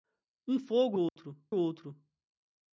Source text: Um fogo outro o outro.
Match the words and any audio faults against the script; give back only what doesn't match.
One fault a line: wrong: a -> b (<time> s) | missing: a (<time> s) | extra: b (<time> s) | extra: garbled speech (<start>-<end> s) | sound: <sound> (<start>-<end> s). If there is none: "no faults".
sound: dropout (1.1-1.2 s)